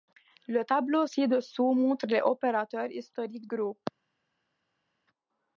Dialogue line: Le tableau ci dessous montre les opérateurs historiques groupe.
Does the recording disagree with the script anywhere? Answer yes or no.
no